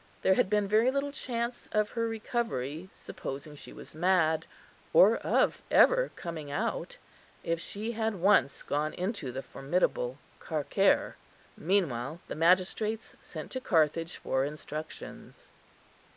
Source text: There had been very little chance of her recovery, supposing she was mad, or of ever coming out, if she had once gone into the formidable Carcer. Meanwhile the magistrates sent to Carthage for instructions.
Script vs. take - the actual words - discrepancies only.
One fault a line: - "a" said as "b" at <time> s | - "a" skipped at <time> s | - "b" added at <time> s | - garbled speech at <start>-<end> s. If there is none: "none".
none